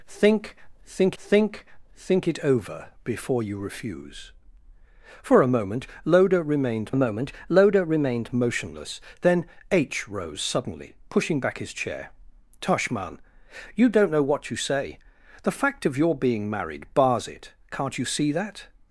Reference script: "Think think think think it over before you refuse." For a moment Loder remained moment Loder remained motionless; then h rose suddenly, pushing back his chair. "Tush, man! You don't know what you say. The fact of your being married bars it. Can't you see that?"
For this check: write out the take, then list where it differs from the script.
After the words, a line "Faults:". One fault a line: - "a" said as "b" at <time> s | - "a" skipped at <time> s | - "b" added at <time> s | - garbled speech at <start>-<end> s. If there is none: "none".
"Think think think think it over before you refuse." For a moment Loder remained moment Loder remained motionless; then h rose suddenly, pushing back his chair. "Tush, man! You don't know what you say. The fact of your being married bars it. Can't you see that?"
Faults:
none